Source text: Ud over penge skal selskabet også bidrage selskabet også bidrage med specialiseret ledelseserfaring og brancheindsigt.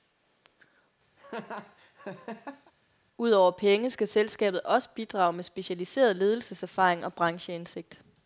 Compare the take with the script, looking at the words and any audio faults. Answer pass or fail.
fail